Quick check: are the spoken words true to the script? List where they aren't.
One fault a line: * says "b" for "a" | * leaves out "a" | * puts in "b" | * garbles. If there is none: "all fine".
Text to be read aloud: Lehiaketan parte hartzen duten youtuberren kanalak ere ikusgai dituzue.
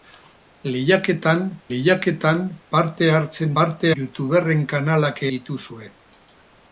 * puts in "lehiaketan"
* says "parte" for "duten"
* leaves out "ere ikusgai"